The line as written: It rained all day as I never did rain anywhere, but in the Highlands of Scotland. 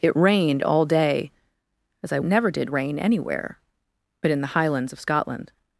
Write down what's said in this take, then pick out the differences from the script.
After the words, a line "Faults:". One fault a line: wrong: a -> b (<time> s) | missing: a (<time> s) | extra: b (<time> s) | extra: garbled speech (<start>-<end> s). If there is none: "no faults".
It rained all day as I never did rain anywhere, but in the Highlands of Scotland.
Faults:
no faults